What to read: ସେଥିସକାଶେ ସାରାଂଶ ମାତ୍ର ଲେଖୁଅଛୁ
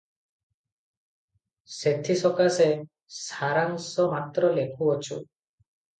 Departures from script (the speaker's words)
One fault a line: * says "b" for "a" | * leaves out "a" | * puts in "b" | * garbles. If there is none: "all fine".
all fine